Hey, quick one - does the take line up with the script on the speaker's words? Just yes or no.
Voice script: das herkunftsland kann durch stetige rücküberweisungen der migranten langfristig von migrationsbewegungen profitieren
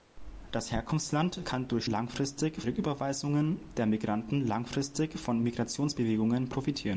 no